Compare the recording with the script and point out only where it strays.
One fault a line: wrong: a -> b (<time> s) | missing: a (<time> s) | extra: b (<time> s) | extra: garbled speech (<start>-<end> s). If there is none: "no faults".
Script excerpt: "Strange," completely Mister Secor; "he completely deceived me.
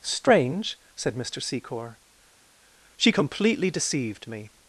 wrong: completely -> said (0.9 s)
wrong: he -> she (3.0 s)